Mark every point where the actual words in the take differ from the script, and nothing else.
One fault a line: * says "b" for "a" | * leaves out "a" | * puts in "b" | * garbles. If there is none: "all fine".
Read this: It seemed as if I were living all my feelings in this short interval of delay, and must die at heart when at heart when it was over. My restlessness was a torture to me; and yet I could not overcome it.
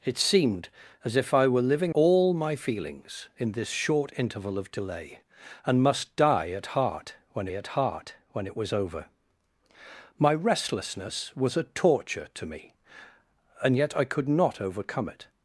all fine